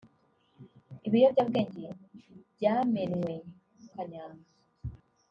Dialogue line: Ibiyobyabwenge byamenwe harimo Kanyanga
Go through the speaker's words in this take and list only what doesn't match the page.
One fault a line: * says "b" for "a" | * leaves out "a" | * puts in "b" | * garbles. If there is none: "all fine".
* leaves out "harimo"